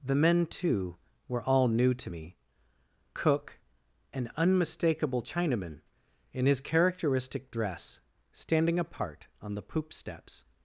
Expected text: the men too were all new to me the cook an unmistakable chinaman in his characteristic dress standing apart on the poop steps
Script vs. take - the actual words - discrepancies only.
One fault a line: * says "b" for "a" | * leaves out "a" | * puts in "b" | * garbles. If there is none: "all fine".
* leaves out "the"